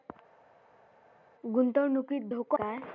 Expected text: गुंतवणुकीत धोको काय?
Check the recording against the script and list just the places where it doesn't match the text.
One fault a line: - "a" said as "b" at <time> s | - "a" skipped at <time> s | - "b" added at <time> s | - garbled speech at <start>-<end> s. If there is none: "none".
none